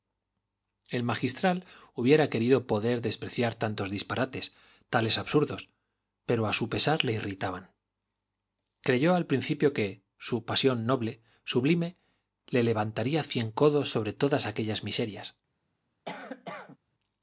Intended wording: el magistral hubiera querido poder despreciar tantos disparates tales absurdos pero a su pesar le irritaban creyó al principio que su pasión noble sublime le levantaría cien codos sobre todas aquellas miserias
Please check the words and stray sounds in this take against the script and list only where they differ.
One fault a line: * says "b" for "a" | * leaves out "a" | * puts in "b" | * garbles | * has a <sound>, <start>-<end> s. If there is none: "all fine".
* has a cough, 16.0-16.8 s